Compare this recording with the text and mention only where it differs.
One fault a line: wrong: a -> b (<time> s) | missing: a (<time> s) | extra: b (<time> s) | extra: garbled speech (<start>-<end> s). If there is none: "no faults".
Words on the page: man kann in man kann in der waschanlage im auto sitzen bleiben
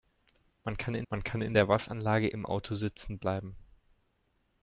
no faults